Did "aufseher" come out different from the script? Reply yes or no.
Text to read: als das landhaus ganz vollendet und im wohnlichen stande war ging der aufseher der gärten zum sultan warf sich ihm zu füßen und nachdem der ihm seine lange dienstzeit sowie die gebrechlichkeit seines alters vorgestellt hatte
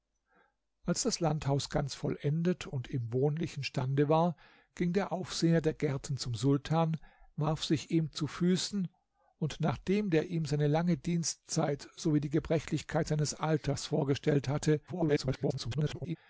no